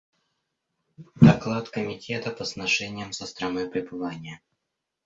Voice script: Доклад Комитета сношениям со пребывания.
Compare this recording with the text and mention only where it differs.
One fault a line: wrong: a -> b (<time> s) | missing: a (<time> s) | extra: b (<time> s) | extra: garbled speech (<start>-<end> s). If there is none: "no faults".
extra: по (2.3 s)
extra: страной (3.3 s)